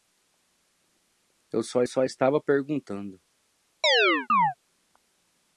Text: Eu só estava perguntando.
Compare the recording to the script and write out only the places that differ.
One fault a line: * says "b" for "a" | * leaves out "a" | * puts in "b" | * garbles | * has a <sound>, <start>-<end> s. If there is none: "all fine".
* puts in "só"
* has a chirp, 3.8-4.5 s